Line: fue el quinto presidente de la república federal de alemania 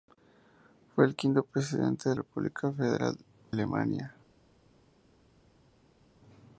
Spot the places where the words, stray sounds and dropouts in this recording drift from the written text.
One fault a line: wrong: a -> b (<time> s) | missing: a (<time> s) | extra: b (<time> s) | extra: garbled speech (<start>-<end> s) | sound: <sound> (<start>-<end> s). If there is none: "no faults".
missing: la (2.1 s)
missing: de (3.2 s)